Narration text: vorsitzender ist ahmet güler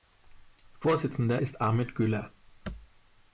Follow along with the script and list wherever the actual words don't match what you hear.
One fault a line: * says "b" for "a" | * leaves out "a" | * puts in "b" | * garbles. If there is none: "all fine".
all fine